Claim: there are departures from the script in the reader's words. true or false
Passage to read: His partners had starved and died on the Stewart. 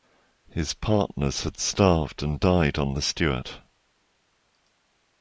false